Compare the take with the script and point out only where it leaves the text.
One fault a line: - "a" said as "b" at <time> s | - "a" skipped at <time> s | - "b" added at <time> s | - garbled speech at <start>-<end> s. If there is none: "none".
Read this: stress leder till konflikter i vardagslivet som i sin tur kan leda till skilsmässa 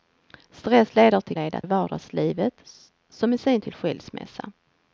- "konflikter" said as "leda" at 1.3 s
- "tur kan leda" skipped at 3.6 s